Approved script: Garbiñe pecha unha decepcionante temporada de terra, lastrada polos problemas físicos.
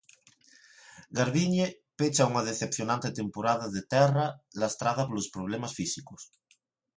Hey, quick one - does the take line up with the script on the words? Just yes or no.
yes